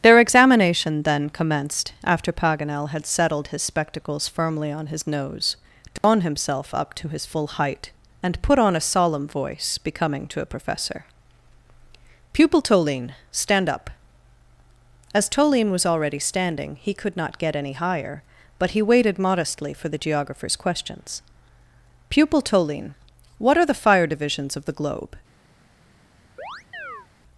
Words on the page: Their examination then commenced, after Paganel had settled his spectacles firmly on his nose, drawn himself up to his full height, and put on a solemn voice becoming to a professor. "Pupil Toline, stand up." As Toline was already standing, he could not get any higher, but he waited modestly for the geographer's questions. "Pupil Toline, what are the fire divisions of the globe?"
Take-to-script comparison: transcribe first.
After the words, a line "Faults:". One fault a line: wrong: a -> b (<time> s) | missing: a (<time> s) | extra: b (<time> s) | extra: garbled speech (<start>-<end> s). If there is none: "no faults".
Their examination then commenced, after Paganel had settled his spectacles firmly on his nose, drawn himself up to his full height, and put on a solemn voice becoming to a professor. "Pupil Toline, stand up." As Toline was already standing, he could not get any higher, but he waited modestly for the geographer's questions. "Pupil Toline, what are the fire divisions of the globe?"
Faults:
no faults